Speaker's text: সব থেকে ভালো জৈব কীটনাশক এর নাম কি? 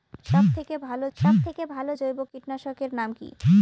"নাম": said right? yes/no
yes